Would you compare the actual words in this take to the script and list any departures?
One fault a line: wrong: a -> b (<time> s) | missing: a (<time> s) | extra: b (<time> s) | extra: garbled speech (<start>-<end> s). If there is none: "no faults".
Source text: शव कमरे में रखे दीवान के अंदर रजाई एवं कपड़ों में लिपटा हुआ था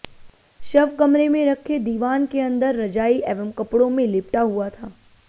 no faults